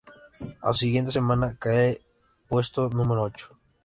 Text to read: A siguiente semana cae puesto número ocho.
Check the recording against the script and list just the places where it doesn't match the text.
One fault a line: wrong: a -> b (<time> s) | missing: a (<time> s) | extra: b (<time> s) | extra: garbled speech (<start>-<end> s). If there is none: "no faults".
no faults